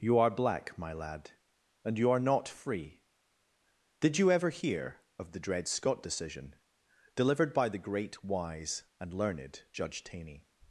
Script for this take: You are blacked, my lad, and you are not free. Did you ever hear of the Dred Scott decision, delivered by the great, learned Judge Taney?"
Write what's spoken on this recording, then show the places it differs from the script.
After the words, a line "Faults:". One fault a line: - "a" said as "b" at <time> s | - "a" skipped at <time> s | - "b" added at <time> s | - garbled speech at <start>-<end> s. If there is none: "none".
You are black, my lad, and you are not free. Did you ever hear of the Dred Scott decision, delivered by the great, wise, and learned Judge Taney?"
Faults:
- "blacked" said as "black" at 0.3 s
- "wise and" added at 8.2 s